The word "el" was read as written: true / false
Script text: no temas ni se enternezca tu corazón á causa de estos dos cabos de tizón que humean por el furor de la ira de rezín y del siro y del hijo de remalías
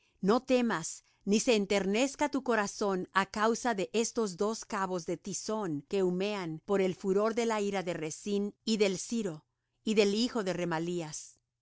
true